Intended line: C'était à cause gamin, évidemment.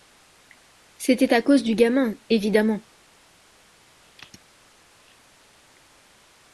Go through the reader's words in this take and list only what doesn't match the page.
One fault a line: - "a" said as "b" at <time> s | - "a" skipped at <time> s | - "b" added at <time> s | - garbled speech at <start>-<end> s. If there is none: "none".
- "du" added at 1.6 s